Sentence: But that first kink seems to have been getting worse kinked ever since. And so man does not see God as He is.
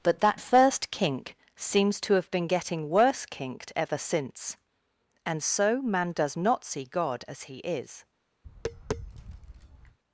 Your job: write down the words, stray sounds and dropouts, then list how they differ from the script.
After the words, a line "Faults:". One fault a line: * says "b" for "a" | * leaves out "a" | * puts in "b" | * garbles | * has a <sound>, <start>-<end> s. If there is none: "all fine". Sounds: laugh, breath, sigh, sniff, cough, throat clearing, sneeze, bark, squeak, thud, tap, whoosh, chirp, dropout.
But that first kink seems to have been getting worse kinked ever since. And so man does not see God as He is.
Faults:
* has a tap, 8.4-10.0 s